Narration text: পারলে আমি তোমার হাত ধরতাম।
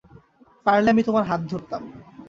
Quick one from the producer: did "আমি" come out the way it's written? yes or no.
yes